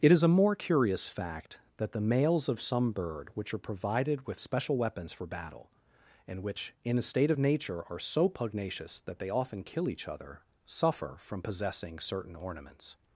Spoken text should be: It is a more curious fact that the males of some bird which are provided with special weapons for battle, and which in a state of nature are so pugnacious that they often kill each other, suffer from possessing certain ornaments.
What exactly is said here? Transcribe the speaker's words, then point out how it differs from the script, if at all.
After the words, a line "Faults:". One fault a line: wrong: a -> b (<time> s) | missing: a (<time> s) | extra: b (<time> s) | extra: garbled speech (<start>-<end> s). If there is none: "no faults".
It is a more curious fact that the males of some bird which are provided with special weapons for battle, and which in a state of nature are so pugnacious that they often kill each other, suffer from possessing certain ornaments.
Faults:
no faults